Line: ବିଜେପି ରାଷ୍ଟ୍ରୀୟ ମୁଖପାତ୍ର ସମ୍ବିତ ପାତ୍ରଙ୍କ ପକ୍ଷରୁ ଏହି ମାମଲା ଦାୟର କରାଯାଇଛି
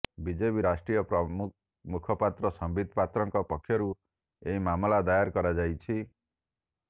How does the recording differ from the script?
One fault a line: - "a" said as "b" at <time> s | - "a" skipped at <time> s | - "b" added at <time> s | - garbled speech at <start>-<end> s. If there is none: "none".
none